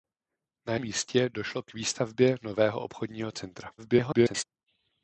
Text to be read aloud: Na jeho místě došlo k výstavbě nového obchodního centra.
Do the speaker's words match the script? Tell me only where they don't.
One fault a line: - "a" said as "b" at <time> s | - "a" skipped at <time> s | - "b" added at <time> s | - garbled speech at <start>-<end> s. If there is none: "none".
- "jeho" skipped at 0.8 s
- garbled speech at 3.8-4.4 s